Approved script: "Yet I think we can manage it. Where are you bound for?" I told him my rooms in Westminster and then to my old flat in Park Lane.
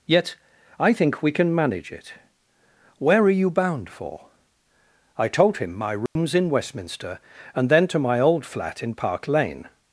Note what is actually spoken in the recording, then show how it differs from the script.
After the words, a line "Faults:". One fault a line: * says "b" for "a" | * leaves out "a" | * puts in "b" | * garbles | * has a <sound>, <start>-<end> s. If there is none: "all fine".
"Yet I think we can manage it. Where are you bound for?" I told him my rooms in Westminster and then to my old flat in Park Lane.
Faults:
* has a dropout, 6.1-6.2 s